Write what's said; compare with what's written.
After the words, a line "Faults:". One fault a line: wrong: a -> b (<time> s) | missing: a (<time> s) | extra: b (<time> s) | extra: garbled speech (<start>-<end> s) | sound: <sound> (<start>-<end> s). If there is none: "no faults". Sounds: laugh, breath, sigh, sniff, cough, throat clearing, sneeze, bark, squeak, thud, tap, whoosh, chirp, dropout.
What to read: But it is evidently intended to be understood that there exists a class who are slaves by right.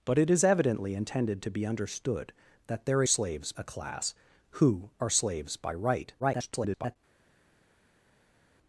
But it is evidently intended to be understood that there slaves a class who are slaves by right. [garbled]
Faults:
wrong: exists -> slaves (3.1 s)
extra: garbled speech (6.2-7.0 s)